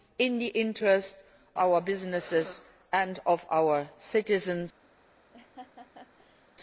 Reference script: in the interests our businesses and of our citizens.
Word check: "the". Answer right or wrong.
right